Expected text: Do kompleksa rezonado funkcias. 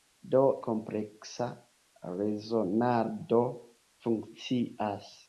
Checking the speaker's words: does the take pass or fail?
pass